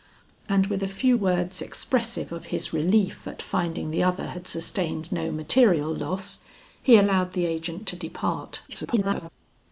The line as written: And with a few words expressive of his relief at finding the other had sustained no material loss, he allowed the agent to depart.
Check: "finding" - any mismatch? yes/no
no